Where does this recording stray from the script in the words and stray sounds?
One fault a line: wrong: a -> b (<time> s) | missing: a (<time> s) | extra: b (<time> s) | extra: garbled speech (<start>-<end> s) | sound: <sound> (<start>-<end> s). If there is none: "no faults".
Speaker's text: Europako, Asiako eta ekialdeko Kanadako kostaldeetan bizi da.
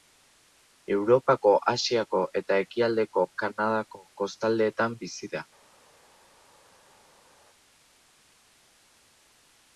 no faults